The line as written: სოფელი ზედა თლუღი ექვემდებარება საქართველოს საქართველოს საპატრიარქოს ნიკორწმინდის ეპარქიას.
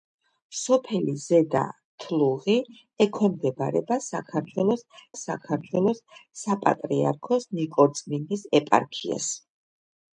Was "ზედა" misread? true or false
false